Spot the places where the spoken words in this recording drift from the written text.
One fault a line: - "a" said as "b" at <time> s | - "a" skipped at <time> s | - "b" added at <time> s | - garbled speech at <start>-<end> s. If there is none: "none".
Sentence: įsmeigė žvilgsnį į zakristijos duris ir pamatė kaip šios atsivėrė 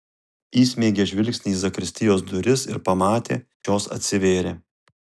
- "kaip" skipped at 3.4 s